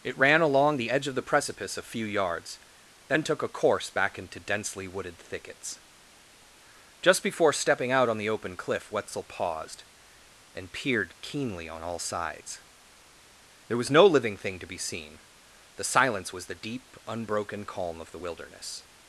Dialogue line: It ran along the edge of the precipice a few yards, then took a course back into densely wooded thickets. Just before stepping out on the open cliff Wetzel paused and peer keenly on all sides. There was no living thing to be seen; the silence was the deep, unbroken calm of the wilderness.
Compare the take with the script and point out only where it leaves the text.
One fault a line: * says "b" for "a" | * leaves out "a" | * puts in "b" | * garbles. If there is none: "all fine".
* says "peered" for "peer"